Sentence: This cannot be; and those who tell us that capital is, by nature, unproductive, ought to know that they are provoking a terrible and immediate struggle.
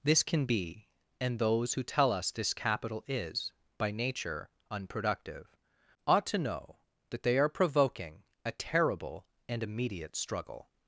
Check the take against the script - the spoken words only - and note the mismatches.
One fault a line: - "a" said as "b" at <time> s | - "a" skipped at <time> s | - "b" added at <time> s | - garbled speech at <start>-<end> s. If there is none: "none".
- "cannot" said as "can" at 0.2 s
- "that" said as "this" at 2.3 s